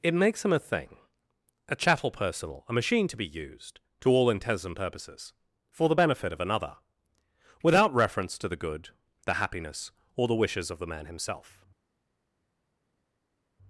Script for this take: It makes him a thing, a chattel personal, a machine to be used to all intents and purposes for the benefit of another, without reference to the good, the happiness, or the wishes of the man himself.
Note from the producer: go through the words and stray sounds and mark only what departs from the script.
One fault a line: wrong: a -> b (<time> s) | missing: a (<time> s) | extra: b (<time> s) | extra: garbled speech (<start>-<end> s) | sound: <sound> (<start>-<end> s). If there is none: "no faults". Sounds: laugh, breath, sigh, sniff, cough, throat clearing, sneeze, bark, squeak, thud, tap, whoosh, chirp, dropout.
no faults